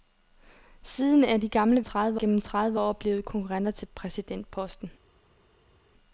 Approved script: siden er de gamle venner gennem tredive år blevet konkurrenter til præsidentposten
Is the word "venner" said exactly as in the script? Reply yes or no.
no